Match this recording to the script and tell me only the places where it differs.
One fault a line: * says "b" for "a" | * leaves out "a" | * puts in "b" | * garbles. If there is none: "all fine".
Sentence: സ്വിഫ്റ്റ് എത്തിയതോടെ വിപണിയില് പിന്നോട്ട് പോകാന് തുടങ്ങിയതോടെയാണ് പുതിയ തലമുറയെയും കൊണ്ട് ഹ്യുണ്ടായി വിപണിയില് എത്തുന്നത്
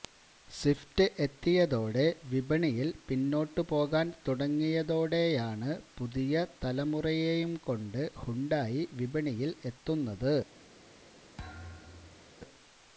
all fine